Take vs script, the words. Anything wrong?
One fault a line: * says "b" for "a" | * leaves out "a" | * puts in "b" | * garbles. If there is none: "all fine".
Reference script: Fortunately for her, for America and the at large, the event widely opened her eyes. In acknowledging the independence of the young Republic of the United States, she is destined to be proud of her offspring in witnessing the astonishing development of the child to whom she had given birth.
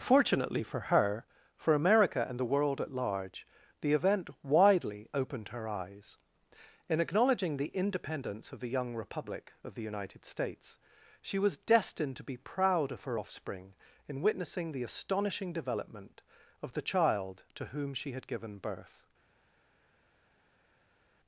* puts in "world"
* says "was" for "is"